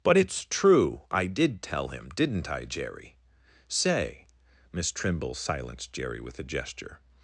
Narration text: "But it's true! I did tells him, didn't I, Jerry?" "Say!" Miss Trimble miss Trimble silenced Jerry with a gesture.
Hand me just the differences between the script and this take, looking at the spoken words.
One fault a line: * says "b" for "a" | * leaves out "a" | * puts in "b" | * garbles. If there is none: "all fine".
* says "tell" for "tells"
* leaves out "miss Trimble"